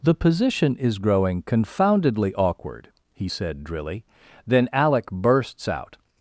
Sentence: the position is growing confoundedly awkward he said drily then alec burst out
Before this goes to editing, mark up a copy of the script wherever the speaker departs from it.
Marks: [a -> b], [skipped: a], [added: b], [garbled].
the position is growing confoundedly awkward he said drily then alec [burst -> bursts] out